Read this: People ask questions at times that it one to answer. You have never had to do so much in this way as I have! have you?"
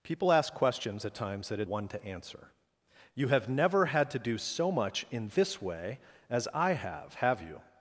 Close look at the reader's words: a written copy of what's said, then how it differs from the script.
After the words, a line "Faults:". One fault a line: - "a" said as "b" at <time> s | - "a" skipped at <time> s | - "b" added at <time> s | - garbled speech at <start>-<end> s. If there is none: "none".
People ask questions at times that it one to answer. You have never had to do so much in this way as I have! have you?"
Faults:
none